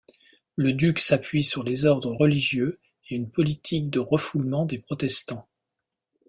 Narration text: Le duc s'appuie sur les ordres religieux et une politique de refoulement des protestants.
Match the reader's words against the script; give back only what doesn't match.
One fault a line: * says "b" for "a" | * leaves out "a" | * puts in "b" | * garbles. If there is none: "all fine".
all fine